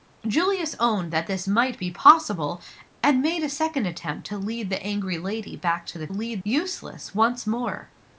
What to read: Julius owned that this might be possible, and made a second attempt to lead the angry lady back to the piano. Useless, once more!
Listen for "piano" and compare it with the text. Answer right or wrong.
wrong